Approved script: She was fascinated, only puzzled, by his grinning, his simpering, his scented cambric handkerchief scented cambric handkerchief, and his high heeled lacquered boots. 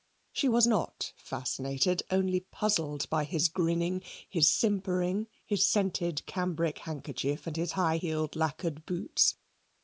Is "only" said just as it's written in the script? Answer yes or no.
yes